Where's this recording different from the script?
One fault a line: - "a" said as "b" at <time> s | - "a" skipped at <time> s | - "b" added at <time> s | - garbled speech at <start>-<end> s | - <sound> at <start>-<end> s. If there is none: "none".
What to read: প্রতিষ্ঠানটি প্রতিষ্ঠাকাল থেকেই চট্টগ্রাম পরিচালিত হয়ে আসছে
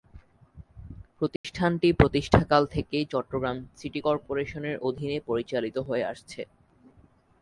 - dropout at 1.4-1.4 s
- "সিটি কর্পোরেশনের অধীনে" added at 3.8 s